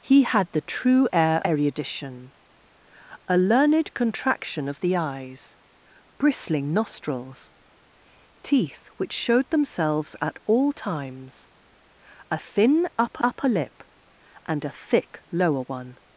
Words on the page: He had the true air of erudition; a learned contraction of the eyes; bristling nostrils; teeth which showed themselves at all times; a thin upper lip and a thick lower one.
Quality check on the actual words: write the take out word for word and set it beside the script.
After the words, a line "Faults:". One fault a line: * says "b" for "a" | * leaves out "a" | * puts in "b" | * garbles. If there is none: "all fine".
He had the true air erudition; a learned contraction of the eyes; bristling nostrils; teeth which showed themselves at all times; a thin upper upper lip and a thick lower one.
Faults:
* leaves out "of"
* puts in "upper"